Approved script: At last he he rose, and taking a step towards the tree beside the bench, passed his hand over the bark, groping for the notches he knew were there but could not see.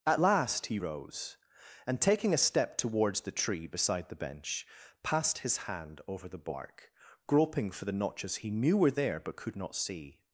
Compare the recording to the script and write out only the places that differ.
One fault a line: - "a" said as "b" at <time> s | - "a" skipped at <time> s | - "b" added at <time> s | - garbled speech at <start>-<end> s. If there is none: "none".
- "he" skipped at 0.8 s